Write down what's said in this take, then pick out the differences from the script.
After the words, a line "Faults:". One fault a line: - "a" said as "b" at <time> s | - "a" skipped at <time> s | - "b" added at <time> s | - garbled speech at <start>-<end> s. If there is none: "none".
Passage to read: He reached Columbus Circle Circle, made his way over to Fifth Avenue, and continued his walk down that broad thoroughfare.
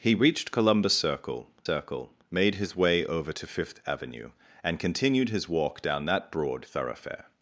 He reached Columbus Circle Circle, made his way over to Fifth Avenue, and continued his walk down that broad thoroughfare.
Faults:
none